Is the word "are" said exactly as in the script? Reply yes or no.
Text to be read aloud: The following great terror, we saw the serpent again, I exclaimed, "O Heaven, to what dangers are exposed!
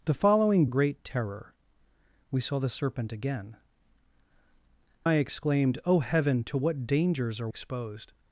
yes